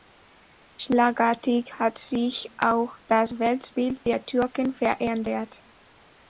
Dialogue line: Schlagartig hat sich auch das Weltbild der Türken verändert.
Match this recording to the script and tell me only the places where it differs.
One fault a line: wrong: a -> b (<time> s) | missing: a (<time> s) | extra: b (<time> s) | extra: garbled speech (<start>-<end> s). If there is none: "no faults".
no faults